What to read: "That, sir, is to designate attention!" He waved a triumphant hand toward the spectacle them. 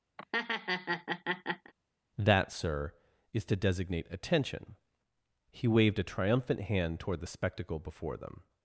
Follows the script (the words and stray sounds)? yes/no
no